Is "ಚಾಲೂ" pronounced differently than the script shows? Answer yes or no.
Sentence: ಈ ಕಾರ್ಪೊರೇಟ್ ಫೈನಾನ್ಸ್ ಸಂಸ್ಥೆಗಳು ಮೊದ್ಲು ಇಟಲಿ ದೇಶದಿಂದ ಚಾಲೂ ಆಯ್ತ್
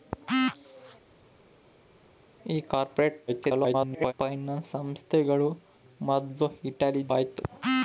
yes